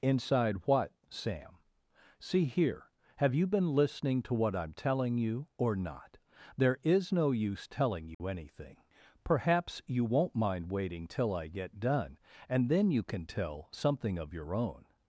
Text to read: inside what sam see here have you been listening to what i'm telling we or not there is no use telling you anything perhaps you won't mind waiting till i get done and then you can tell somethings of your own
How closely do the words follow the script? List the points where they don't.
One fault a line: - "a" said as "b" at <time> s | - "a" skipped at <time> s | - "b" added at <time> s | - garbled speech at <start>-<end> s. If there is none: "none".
- "we" said as "you" at 5.2 s
- "somethings" said as "something" at 13.7 s